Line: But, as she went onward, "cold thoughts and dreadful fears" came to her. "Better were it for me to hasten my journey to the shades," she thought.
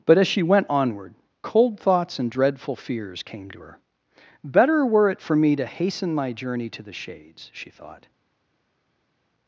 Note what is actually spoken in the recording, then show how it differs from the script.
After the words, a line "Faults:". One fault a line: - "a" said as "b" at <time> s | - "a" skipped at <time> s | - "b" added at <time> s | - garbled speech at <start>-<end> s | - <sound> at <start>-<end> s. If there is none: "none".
But, as she went onward, "cold thoughts and dreadful fears" came to her. "Better were it for me to hasten my journey to the shades," she thought.
Faults:
none